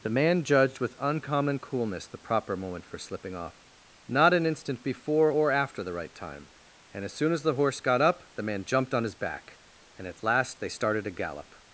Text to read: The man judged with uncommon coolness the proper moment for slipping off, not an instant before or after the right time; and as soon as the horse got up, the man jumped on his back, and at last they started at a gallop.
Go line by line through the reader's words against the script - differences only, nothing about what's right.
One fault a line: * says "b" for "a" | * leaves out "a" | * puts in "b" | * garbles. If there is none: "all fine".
* leaves out "at"